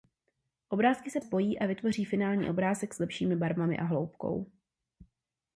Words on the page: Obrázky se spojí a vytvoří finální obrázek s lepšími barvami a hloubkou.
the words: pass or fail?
pass